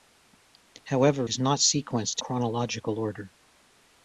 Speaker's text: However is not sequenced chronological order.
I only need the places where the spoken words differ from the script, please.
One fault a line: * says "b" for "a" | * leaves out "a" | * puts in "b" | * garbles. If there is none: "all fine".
all fine